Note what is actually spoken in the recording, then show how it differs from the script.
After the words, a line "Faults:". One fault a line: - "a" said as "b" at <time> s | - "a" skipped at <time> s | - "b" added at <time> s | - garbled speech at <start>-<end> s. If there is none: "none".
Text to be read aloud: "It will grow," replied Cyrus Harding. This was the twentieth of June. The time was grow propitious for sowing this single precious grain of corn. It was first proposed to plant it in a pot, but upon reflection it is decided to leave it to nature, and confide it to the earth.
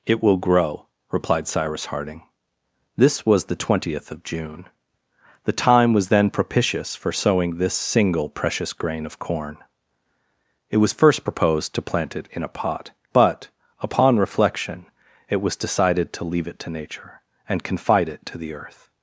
"It will grow," replied Cyrus Harding. This was the twentieth of June. The time was then propitious for sowing this single precious grain of corn. It was first proposed to plant it in a pot, but upon reflection it was decided to leave it to nature, and confide it to the earth.
Faults:
- "grow" said as "then" at 6.1 s
- "is" said as "was" at 15.4 s